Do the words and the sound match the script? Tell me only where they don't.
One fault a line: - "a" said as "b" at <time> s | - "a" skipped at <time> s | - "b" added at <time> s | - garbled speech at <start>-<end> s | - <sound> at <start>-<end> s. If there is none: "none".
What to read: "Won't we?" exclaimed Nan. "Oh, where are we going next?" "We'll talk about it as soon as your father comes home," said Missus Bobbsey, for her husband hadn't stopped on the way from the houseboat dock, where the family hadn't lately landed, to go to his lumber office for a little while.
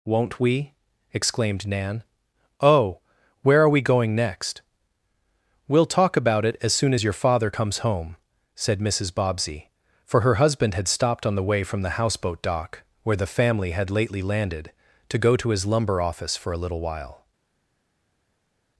- "hadn't" said as "had" at 10.7 s
- "hadn't" said as "had" at 13.7 s